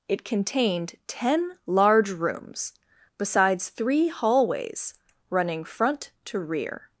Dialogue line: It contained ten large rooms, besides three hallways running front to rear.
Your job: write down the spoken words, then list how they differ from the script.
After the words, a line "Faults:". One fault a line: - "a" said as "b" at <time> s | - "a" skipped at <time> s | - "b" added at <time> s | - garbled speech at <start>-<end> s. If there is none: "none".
It contained ten large rooms, besides three hallways running front to rear.
Faults:
none